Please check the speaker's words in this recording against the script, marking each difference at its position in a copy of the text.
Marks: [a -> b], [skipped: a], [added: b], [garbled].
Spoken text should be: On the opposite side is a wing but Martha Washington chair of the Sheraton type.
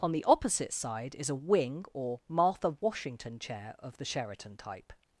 On the opposite side is a wing [but -> or] Martha Washington chair of the Sheraton type.